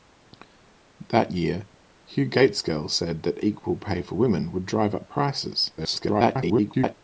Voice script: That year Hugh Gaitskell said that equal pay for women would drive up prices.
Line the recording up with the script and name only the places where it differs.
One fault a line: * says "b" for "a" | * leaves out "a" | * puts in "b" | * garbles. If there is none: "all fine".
* garbles